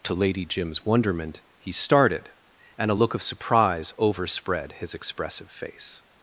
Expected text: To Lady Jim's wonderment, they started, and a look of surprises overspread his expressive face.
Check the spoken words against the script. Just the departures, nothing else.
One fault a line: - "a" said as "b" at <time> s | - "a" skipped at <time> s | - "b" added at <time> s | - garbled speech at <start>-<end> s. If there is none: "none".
- "they" said as "he" at 1.6 s
- "surprises" said as "surprise" at 3.2 s